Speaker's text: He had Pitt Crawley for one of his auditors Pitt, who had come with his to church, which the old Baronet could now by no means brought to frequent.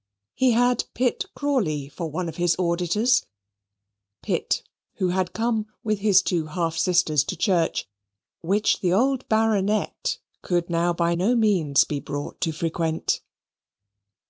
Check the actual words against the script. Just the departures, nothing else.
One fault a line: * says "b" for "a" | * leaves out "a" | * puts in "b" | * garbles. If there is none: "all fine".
* puts in "two half sisters"
* puts in "be"